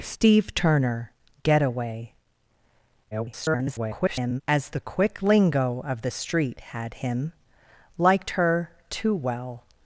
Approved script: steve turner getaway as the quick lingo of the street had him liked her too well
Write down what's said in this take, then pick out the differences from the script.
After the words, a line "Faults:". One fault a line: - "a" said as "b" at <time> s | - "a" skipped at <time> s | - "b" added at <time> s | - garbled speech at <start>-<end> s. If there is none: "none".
steve turner getaway [garbled] as the quick lingo of the street had him liked her too well
Faults:
- garbled speech at 3.1-4.4 s